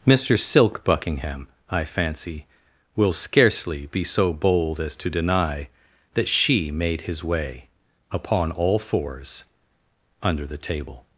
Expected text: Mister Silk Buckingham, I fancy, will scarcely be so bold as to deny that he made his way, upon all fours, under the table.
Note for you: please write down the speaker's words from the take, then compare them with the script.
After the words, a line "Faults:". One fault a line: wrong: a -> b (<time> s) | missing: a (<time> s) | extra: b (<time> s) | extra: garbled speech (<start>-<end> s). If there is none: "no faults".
Mister Silk Buckingham, I fancy, will scarcely be so bold as to deny that she made his way, upon all fours, under the table.
Faults:
wrong: he -> she (6.3 s)